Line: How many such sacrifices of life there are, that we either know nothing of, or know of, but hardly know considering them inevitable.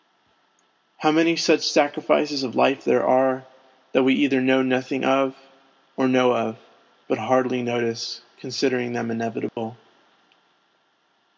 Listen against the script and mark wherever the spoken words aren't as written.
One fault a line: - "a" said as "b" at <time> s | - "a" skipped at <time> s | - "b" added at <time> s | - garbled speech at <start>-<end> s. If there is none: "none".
- "know" said as "notice" at 7.6 s